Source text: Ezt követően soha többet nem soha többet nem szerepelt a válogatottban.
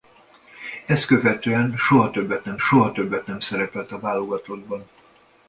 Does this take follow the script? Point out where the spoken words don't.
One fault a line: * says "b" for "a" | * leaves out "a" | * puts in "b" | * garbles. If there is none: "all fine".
all fine